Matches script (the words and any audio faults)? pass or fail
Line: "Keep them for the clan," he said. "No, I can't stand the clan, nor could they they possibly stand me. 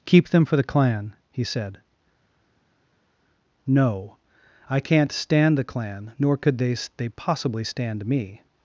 pass